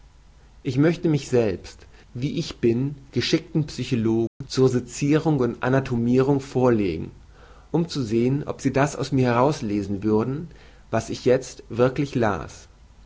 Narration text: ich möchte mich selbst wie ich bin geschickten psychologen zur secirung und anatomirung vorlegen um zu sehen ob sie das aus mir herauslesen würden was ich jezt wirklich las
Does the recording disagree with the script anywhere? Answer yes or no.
no